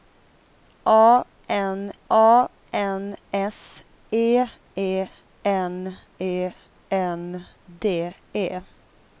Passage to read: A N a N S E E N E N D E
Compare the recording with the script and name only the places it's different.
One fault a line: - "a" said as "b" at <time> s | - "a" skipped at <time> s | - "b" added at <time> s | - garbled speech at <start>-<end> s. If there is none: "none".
none